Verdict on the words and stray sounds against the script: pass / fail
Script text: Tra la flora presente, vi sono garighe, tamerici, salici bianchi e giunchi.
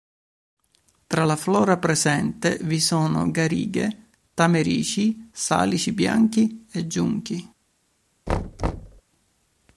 fail